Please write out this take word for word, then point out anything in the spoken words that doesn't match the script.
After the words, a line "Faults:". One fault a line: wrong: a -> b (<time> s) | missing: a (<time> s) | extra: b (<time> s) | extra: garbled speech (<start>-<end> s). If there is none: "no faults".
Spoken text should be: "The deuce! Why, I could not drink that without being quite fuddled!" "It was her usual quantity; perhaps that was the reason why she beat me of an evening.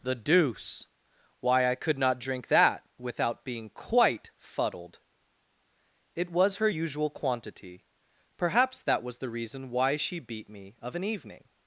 "The deuce! Why, I could not drink that without being quite fuddled!" "It was her usual quantity; perhaps that was the reason why she beat me of an evening.
Faults:
no faults